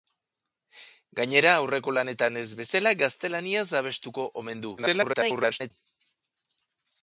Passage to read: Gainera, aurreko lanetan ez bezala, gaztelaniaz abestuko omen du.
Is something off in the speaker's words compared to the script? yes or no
yes